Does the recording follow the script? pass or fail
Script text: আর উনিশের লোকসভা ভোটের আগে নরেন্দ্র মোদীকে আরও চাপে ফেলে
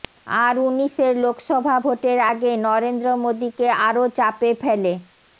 pass